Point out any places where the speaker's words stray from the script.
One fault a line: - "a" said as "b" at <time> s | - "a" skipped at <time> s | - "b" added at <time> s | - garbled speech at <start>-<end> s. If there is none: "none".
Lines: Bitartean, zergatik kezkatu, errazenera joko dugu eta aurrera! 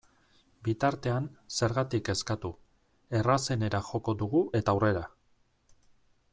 none